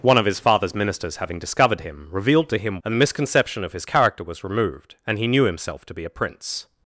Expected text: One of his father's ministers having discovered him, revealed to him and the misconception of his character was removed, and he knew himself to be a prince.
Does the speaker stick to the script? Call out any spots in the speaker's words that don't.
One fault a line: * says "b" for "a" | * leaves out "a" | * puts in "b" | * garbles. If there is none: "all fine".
all fine